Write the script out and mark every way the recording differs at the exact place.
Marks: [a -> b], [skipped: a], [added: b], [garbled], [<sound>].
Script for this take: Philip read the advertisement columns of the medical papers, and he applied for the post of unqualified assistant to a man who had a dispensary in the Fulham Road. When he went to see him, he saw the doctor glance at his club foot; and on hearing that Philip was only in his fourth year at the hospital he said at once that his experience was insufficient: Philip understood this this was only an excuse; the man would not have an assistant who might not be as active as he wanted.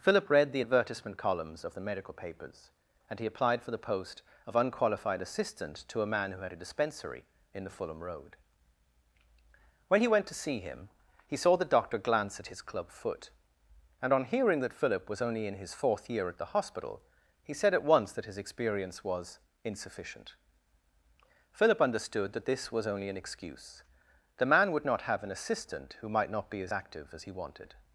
Philip read the advertisement columns of the medical papers, and he applied for the post of unqualified assistant to a man who had a dispensary in the Fulham Road. When he went to see him, he saw the doctor glance at his club foot; and on hearing that Philip was only in his fourth year at the hospital he said at once that his experience was insufficient: Philip understood [this -> that] this was only an excuse; the man would not have an assistant who might not be as active as he wanted.